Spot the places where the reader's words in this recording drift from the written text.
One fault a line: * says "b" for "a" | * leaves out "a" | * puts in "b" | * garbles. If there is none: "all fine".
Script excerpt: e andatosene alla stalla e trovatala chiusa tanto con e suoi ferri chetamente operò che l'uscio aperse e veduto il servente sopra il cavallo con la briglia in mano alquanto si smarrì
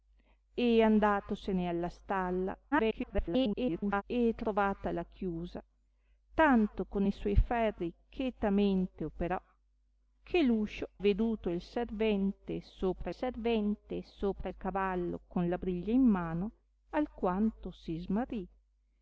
* garbles
* says "veduto il servente sopra" for "aperse e veduto il"